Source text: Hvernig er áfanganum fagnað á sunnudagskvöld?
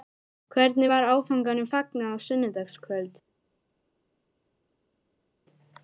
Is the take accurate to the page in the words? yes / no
no